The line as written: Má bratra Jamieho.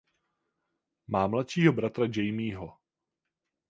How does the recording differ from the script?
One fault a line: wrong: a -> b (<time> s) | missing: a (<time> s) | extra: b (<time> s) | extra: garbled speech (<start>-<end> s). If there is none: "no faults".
extra: mladšího (1.3 s)